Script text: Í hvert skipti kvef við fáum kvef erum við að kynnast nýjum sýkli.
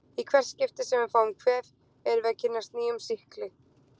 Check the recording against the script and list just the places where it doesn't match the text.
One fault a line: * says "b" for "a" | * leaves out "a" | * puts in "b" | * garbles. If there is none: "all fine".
* says "sem" for "kvef"